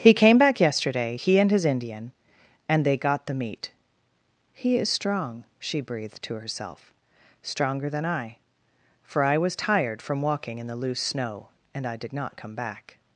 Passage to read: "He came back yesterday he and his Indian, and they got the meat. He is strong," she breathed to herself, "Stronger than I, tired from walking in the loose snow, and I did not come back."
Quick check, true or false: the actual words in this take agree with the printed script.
false